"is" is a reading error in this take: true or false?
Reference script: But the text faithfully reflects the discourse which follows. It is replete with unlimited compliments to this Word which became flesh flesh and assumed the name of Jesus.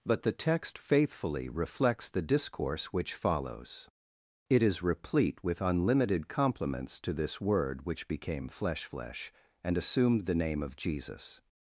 false